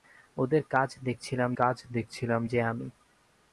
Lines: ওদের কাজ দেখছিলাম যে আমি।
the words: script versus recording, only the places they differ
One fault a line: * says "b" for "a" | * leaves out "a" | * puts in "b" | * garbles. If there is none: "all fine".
* puts in "কাজ দেখছিলাম"